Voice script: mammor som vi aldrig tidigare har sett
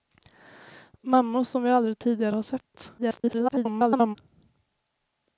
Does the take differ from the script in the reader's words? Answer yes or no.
yes